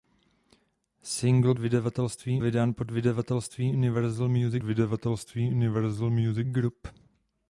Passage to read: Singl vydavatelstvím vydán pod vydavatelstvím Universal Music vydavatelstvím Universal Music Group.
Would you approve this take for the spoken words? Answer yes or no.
yes